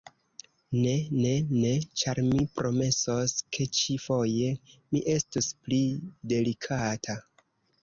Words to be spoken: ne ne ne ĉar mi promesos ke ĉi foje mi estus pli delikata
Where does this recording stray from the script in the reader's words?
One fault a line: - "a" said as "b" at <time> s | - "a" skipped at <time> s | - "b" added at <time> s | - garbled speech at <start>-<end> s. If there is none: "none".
none